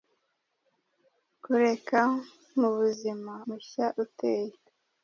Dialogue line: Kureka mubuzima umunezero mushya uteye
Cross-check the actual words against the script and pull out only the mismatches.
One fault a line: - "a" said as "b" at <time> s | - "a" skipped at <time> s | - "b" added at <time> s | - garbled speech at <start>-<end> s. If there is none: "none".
- "umunezero" skipped at 3.3 s